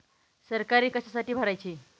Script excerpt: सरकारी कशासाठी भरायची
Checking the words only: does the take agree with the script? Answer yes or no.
yes